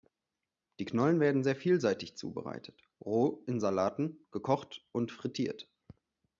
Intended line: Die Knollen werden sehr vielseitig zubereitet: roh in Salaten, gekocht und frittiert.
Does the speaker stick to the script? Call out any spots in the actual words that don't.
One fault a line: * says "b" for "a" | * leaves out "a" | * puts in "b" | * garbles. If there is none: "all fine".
all fine